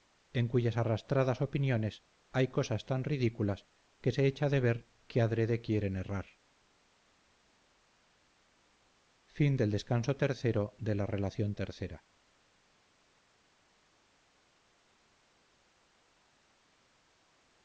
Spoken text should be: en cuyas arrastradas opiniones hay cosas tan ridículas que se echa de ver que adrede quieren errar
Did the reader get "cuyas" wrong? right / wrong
right